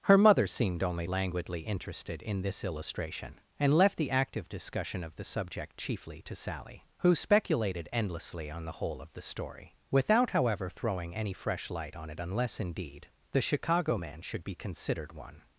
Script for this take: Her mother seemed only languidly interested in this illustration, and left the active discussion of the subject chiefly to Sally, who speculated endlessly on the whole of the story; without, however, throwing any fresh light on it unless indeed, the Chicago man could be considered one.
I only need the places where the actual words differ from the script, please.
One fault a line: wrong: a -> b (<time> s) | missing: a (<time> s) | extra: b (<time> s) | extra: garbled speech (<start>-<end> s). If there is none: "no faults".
wrong: could -> should (14.2 s)